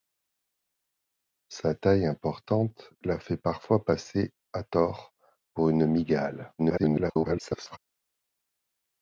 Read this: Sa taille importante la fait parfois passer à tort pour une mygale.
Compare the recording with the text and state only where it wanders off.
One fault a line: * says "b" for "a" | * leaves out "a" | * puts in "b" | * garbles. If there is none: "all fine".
* garbles